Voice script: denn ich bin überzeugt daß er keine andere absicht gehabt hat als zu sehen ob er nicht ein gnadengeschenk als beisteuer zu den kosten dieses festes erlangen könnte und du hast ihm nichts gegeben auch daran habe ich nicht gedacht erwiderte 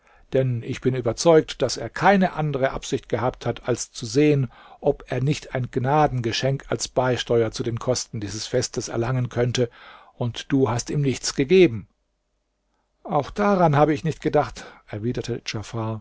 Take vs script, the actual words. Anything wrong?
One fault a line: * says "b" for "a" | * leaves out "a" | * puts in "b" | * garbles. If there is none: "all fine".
all fine